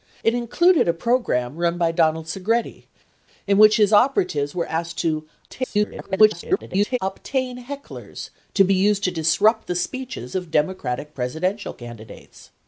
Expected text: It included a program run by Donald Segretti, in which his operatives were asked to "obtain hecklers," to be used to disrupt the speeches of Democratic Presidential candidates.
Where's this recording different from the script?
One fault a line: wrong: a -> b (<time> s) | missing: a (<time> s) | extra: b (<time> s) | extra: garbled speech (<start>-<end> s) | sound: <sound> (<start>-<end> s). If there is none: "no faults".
extra: garbled speech (5.5-7.0 s)